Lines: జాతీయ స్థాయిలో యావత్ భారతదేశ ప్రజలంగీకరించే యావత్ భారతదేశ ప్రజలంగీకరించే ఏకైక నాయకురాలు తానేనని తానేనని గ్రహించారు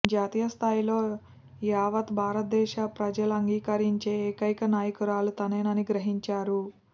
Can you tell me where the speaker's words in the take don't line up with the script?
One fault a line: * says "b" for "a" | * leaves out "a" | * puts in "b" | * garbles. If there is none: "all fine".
* leaves out "యావత్ భారతదేశ ప్రజలంగీకరించే"
* leaves out "తానేనని"